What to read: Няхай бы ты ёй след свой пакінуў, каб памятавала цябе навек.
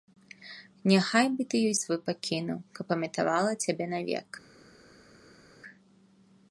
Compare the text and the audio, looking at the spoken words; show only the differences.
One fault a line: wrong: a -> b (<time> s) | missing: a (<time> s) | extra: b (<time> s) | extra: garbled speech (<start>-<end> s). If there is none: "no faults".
missing: след (1.8 s)